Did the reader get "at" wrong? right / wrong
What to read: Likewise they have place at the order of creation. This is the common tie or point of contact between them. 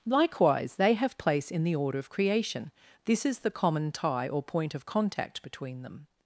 wrong